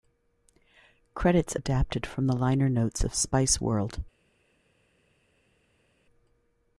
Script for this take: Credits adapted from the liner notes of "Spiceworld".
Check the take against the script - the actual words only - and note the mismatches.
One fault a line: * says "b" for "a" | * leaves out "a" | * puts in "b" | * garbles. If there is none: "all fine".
all fine